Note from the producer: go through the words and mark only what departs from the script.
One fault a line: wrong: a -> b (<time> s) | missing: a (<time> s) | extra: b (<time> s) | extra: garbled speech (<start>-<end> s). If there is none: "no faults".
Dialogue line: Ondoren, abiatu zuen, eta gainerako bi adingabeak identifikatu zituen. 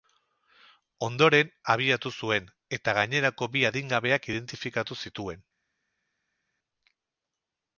no faults